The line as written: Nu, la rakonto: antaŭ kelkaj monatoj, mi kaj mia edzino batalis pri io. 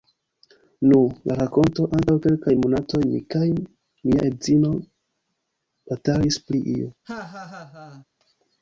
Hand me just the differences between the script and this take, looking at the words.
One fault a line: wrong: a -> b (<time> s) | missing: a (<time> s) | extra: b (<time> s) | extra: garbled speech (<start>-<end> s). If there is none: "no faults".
no faults